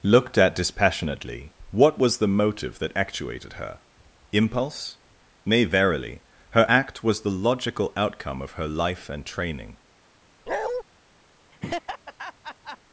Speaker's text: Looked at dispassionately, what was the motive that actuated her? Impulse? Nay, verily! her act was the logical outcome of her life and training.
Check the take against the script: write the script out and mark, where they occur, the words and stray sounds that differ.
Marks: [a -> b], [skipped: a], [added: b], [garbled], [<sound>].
Looked at dispassionately, what was the motive that actuated her? Impulse? Nay, verily! her act was the logical outcome of her life and training. [bark] [laugh]